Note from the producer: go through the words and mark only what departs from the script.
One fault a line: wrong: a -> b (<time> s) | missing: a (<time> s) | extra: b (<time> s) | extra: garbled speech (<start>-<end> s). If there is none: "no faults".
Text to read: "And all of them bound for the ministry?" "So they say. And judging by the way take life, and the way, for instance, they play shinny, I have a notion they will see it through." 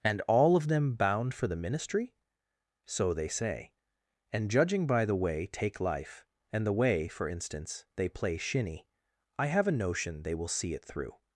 no faults